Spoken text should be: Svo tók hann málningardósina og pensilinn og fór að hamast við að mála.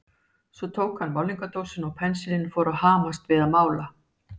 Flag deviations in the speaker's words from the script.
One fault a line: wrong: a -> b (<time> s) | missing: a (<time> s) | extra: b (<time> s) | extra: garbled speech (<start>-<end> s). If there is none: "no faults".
no faults